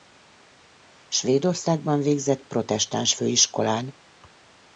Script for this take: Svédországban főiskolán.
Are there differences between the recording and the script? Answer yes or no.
yes